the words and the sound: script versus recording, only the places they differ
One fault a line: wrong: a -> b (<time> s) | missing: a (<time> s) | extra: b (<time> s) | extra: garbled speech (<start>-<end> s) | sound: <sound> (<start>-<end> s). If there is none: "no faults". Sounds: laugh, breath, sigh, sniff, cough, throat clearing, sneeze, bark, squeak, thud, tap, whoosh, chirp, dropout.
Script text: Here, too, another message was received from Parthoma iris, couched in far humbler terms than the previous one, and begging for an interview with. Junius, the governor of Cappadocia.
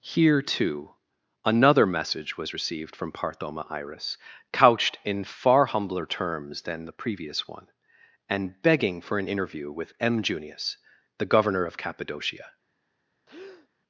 extra: M (10.0 s)
sound: breath (13.3-13.7 s)